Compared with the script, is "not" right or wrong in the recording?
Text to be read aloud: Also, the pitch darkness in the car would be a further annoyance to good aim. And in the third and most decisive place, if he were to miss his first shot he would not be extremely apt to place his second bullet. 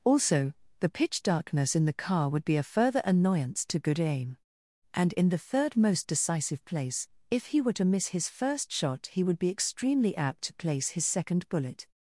wrong